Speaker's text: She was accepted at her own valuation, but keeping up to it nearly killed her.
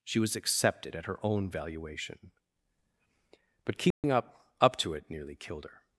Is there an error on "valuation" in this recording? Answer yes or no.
no